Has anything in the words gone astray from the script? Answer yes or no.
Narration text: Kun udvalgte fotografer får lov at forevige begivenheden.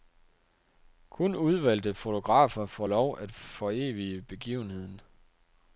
no